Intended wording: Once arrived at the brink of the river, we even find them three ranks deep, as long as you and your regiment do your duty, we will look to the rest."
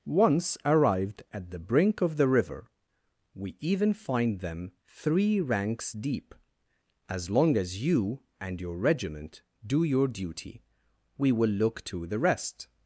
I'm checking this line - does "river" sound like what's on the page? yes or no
yes